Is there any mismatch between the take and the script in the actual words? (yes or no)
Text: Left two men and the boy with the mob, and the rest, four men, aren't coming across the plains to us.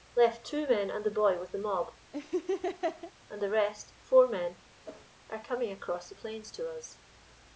yes